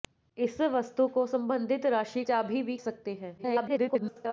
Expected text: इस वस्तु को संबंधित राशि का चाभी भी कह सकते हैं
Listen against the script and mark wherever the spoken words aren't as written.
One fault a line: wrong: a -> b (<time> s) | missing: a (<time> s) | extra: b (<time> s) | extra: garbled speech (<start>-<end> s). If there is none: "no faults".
missing: का (2.2 s)
missing: कह (2.8 s)
extra: garbled speech (3.4-4.3 s)